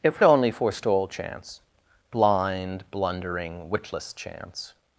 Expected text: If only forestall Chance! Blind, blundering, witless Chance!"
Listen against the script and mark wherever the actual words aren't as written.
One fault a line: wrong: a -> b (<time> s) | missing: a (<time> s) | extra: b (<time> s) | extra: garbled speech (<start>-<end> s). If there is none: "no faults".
no faults